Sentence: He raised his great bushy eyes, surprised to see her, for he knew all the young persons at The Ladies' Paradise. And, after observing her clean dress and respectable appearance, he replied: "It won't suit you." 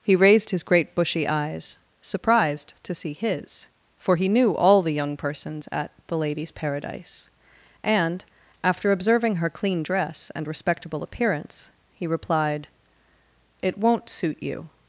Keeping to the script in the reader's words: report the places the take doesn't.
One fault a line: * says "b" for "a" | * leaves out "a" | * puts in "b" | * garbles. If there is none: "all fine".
* says "his" for "her"